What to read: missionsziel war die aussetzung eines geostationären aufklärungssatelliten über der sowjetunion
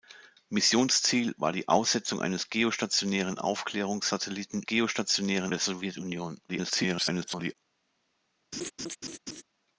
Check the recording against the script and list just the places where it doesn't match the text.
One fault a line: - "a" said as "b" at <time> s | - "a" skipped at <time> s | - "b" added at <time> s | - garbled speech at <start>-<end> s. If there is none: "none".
- "über" said as "geostationären" at 4.7 s
- garbled speech at 6.5-7.6 s